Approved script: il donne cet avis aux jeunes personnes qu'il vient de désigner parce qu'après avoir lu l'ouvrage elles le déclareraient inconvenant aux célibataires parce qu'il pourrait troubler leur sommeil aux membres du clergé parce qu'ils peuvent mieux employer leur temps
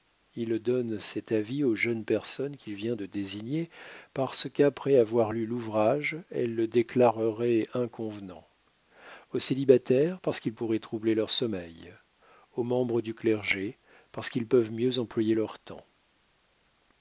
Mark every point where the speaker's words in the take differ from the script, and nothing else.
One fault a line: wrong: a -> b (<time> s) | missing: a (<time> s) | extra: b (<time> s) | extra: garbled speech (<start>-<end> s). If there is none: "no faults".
no faults